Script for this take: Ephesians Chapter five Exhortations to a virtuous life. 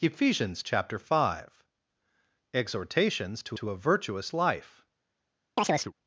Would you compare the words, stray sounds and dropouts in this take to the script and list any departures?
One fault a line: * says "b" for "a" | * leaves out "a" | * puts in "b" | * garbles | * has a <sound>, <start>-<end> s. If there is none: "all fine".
* puts in "to"
* has a chirp, 5.6-5.9 s